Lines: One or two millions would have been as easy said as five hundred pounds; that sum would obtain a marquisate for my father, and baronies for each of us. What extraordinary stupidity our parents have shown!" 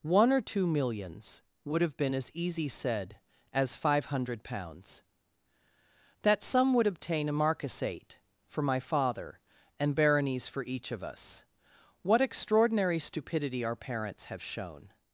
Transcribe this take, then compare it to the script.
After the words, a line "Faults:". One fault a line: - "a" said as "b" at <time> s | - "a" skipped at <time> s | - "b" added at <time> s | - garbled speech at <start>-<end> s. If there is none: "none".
One or two millions would have been as easy said as five hundred pounds; that sum would obtain a marquisate for my father, and baronies for each of us. What extraordinary stupidity our parents have shown!"
Faults:
none